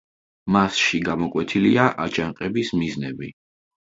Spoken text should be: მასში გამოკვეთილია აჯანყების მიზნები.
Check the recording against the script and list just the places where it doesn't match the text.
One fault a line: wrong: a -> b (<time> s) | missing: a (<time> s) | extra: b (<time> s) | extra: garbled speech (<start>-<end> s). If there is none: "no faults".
no faults